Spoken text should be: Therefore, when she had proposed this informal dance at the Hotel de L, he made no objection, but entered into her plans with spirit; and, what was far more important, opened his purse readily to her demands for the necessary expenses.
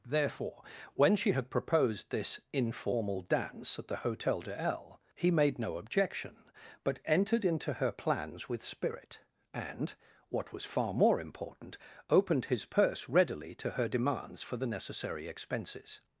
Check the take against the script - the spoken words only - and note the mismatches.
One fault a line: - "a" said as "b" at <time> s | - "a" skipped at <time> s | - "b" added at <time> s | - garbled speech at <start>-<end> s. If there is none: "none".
none